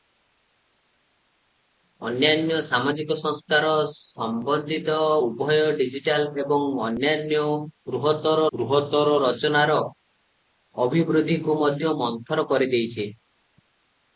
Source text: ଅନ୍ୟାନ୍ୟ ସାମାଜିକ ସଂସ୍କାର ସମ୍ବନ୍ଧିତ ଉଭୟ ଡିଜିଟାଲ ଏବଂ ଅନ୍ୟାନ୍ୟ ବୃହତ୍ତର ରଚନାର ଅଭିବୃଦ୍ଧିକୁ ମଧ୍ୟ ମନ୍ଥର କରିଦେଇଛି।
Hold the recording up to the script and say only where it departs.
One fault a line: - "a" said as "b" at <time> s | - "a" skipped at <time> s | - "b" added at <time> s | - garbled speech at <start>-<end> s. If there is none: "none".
- "ବୃହତ୍ତର" added at 8.5 s